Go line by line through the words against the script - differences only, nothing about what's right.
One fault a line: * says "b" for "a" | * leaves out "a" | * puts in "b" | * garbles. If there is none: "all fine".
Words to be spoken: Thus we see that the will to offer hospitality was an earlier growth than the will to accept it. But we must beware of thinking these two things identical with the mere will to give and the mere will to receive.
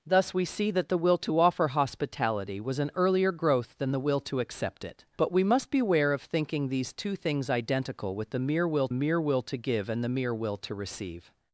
* puts in "mere will"